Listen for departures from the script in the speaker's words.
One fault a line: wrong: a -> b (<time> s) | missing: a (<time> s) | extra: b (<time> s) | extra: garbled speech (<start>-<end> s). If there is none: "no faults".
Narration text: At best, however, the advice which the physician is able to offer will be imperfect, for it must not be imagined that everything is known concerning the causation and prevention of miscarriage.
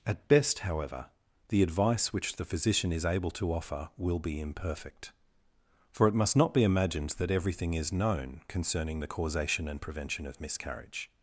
no faults